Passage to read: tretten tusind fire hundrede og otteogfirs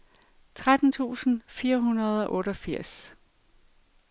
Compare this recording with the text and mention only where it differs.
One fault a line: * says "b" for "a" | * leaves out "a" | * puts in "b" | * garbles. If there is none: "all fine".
all fine